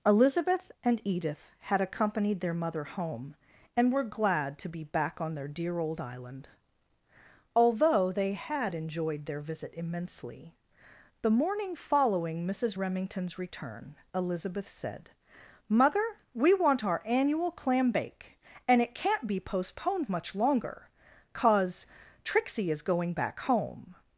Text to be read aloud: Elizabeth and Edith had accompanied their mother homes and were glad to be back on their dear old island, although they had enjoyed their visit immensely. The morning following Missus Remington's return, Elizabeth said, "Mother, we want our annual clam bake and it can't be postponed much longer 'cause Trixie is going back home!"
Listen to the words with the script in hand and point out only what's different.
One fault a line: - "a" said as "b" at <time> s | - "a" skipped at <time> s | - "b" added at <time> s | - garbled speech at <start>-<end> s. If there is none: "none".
- "homes" said as "home" at 2.9 s